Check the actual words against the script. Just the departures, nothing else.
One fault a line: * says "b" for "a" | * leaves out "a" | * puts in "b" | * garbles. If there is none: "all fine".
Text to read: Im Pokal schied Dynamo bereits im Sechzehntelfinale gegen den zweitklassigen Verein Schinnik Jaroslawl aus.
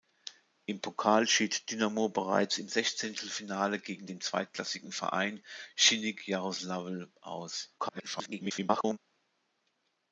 * garbles